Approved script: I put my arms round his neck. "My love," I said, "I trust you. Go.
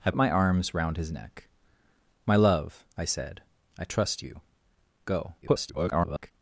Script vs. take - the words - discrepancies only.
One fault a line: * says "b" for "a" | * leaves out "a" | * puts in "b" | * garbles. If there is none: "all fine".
* leaves out "put"
* garbles